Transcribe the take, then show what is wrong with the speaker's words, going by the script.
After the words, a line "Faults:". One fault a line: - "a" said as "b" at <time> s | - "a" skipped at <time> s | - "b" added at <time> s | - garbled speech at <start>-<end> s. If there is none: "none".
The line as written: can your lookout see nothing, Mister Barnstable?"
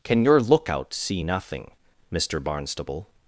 can your lookout see nothing, Mister Barnstable?"
Faults:
none